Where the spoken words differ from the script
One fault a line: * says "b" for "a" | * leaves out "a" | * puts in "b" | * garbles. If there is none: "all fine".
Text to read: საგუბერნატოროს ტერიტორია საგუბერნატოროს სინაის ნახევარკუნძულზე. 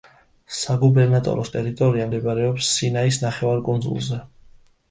* says "მდებარეობს" for "საგუბერნატოროს"